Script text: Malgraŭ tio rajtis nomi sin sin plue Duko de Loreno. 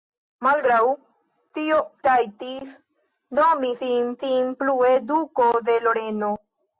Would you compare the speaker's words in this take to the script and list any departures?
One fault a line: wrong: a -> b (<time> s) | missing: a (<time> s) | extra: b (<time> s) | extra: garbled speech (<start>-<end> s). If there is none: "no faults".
no faults